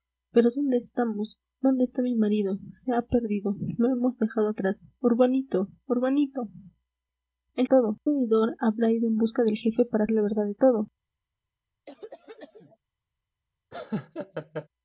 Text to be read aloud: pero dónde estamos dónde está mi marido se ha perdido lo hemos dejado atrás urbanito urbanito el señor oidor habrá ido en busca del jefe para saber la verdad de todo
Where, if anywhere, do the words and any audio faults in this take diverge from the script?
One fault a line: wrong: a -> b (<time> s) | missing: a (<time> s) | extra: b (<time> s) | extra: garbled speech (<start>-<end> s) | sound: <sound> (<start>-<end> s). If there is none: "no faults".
wrong: señor -> todo (7.6 s)
missing: saber (10.1 s)
sound: cough (11.9-12.8 s)
sound: laugh (13.7-14.7 s)